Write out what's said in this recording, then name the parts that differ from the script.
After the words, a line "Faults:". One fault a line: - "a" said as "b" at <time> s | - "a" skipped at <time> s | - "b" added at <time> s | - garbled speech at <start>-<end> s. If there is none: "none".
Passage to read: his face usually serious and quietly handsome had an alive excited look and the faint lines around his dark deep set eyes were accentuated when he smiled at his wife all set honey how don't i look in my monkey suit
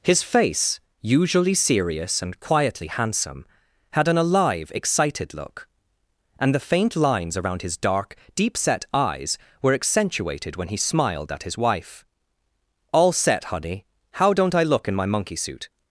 his face usually serious and quietly handsome had an alive excited look and the faint lines around his dark deep set eyes were accentuated when he smiled at his wife all set honey how don't i look in my monkey suit
Faults:
none